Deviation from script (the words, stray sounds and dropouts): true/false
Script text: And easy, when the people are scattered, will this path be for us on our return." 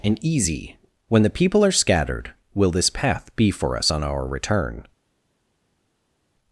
false